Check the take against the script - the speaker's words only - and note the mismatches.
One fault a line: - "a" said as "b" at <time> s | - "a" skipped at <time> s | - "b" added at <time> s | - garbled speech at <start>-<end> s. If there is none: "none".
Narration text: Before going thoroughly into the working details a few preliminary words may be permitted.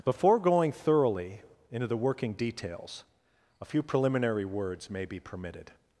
none